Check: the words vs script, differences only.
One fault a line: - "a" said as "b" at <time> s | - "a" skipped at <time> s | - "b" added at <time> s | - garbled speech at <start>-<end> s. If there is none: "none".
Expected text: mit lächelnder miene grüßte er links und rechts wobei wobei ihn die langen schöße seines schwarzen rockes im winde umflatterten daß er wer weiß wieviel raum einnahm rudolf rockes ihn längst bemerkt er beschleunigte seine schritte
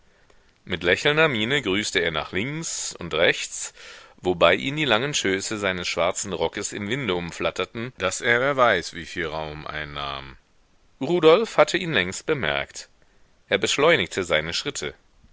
- "nach" added at 2.1 s
- "wobei" skipped at 4.5 s
- "rockes" said as "hatte" at 11.6 s